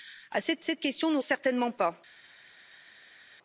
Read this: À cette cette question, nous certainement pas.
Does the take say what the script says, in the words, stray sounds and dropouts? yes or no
yes